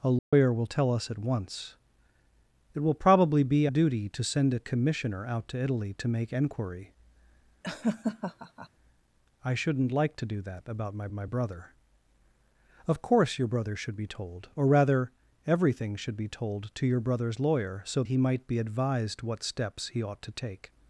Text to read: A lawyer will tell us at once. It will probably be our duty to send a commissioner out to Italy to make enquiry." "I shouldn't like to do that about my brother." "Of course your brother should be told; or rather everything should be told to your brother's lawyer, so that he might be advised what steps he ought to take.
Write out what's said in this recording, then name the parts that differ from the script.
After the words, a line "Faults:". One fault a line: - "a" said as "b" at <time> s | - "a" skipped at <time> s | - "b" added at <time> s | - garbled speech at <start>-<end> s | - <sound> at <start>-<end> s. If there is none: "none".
A lawyer will tell us at once. It will probably be duty to send a commissioner out to Italy to make enquiry." "I shouldn't like to do that about my my brother." "Of course your brother should be told; or rather everything should be told to your brother's lawyer, so he might be advised what steps he ought to take.
Faults:
- dropout at 0.2-0.3 s
- "our" skipped at 3.7 s
- laugh at 7.6-8.7 s
- "my" added at 11.1 s
- "that" skipped at 18.0 s